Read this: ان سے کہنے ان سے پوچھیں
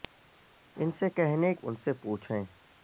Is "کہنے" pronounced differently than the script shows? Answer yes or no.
no